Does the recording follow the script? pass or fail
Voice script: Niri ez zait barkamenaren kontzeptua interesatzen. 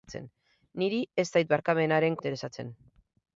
fail